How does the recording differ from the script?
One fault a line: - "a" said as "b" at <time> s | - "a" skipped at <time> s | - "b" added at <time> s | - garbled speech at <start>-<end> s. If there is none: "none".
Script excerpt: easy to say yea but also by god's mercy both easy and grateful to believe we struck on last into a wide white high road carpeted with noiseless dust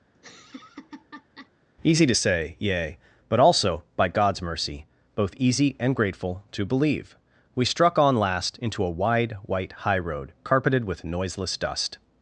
none